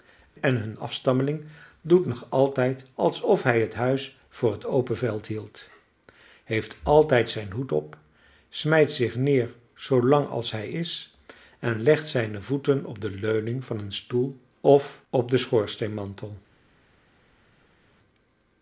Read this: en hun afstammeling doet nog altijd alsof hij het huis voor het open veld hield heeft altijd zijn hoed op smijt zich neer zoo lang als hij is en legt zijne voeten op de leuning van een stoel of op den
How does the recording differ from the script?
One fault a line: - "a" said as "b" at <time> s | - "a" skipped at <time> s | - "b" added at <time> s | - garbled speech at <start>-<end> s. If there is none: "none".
none